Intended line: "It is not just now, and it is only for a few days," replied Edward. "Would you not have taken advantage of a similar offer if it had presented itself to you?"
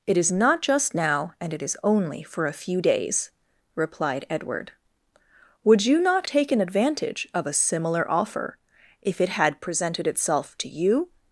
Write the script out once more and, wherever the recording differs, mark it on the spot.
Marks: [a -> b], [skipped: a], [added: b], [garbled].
"It is not just now, and it is only for a few days," replied Edward. "Would you not [skipped: have] taken advantage of a similar offer if it had presented itself to you?"